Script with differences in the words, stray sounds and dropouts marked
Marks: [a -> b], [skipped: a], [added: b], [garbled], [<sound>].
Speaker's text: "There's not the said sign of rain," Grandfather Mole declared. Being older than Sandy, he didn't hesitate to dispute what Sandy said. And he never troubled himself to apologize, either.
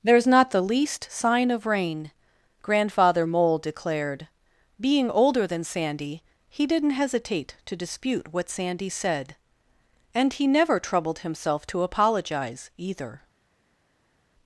"There's not the [said -> least] sign of rain," Grandfather Mole declared. Being older than Sandy, he didn't hesitate to dispute what Sandy said. And he never troubled himself to apologize, either.